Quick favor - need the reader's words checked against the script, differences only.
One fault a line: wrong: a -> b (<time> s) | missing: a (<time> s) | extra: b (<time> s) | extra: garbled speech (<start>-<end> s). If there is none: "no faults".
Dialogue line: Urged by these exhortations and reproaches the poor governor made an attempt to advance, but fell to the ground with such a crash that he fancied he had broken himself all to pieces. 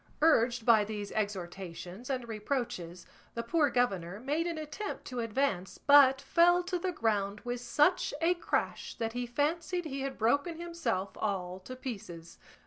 no faults